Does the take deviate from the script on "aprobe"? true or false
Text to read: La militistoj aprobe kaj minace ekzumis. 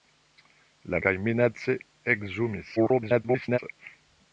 true